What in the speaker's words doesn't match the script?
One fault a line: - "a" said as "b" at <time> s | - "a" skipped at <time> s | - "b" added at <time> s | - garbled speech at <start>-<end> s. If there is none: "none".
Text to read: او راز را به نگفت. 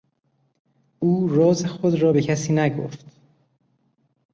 - "خود" added at 1.6 s
- "کسی" added at 2.2 s